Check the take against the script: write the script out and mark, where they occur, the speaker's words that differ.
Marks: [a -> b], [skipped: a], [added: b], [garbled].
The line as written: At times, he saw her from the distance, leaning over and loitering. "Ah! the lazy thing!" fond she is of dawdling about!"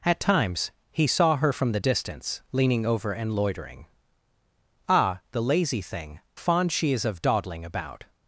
At times, he saw her from the distance, leaning over and loitering. "Ah! the lazy thing!" fond she is of dawdling about!"